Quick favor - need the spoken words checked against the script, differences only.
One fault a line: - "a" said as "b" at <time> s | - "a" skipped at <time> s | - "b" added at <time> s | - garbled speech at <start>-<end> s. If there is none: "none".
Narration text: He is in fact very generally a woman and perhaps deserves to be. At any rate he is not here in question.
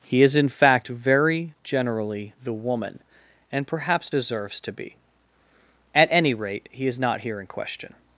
- "a" said as "the" at 2.4 s